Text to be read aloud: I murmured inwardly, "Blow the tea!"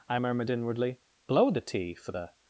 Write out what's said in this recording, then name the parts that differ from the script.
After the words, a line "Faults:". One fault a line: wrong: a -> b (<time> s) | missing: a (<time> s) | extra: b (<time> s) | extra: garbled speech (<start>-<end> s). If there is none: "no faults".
I murmured inwardly, "Blow the tea!" for the
Faults:
extra: for the (2.0 s)